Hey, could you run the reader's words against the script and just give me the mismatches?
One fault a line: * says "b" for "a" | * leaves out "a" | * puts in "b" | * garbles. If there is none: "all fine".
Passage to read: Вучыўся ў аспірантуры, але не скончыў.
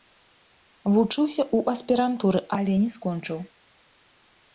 all fine